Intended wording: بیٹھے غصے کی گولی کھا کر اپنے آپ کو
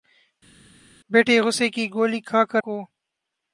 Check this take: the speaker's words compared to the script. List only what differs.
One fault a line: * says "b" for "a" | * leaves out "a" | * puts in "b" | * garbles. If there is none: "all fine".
* leaves out "اپنے آپ"